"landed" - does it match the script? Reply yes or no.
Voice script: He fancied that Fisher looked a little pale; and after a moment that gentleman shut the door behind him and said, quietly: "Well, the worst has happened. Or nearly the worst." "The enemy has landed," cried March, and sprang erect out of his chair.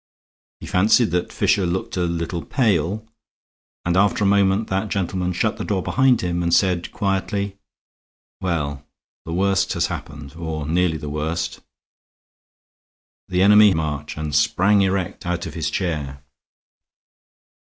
no